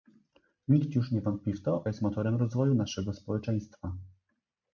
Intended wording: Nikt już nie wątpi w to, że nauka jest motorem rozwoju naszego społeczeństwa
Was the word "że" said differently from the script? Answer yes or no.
yes